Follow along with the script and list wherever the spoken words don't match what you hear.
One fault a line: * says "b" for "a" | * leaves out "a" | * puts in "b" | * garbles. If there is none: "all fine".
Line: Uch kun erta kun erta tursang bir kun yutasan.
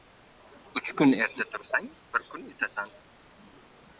* leaves out "kun erta"